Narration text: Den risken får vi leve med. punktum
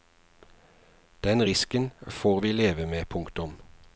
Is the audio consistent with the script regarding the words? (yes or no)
yes